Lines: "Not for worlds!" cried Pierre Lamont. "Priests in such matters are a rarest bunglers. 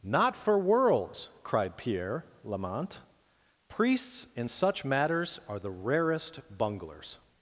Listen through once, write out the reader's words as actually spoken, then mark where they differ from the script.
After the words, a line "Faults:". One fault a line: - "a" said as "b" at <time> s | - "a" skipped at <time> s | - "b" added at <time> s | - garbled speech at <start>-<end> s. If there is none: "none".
"Not for worlds!" cried Pierre Lamont. "Priests in such matters are the rarest bunglers.
Faults:
- "a" said as "the" at 5.6 s